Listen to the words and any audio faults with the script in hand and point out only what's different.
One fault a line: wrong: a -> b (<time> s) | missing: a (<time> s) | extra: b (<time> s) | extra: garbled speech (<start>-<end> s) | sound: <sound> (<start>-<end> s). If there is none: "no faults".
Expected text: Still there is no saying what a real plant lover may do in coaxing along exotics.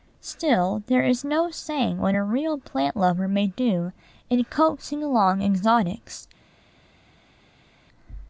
no faults